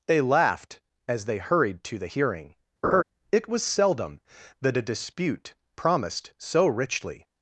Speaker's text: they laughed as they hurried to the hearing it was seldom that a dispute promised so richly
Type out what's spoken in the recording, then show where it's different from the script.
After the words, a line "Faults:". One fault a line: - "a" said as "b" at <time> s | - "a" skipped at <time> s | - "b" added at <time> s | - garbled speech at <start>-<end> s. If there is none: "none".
they laughed as they hurried to the hearing it was seldom that a dispute promised so richly
Faults:
none